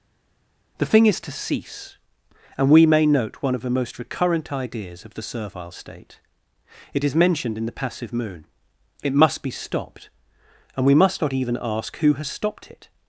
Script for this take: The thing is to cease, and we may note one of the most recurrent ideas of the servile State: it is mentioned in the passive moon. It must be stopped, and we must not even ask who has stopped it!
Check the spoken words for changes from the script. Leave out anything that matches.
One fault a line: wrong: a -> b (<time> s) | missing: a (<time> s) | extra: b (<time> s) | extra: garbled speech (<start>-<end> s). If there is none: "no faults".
no faults